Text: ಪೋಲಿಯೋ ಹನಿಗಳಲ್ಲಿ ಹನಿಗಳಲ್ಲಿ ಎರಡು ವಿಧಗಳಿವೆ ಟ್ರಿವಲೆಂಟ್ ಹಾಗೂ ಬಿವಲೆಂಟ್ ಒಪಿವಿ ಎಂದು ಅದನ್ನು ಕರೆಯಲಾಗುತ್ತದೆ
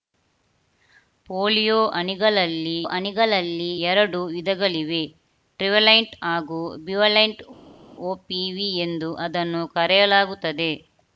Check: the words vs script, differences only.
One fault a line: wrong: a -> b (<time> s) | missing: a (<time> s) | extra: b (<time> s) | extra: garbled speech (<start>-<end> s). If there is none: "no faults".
no faults